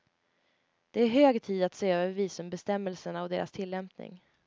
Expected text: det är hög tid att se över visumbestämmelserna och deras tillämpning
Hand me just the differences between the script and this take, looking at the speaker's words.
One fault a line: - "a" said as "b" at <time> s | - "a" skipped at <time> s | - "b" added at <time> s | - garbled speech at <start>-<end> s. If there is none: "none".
none